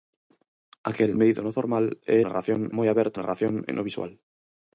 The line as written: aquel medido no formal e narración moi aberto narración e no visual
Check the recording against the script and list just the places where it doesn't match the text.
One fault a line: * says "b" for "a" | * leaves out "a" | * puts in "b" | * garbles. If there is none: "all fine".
all fine